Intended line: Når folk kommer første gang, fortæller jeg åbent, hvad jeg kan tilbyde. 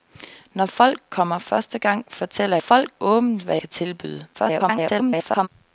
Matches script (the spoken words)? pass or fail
fail